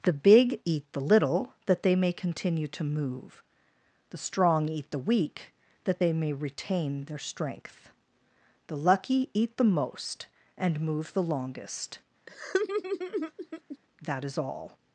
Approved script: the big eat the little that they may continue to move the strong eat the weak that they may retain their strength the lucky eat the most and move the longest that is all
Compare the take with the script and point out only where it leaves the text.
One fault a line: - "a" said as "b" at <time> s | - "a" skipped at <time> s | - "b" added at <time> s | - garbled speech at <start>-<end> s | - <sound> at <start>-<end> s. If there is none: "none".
- laugh at 12.3-13.8 s